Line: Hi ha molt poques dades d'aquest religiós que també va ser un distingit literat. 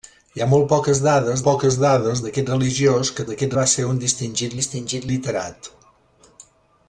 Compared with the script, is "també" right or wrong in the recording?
wrong